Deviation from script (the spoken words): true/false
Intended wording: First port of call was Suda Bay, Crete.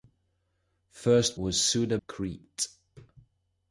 true